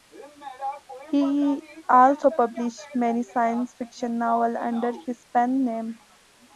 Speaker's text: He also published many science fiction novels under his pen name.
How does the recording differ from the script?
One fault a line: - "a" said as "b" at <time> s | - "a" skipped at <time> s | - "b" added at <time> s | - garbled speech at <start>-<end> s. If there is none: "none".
none